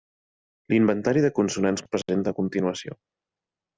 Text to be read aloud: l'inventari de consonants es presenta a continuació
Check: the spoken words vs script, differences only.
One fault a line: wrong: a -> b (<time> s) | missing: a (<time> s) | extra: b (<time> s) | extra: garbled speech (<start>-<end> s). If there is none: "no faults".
no faults